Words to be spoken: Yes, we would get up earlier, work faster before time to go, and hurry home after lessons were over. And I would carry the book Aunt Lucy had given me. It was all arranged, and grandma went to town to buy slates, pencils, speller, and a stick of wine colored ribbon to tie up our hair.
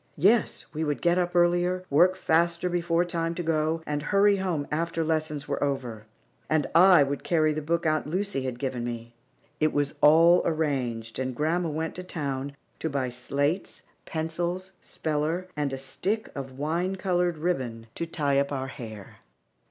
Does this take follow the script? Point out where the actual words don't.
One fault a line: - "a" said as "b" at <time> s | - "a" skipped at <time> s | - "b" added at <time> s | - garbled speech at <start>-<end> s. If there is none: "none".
none